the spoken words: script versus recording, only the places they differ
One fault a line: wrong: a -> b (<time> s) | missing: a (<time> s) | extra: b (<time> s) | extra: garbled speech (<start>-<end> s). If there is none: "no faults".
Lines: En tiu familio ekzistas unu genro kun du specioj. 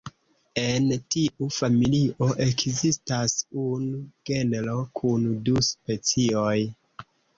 no faults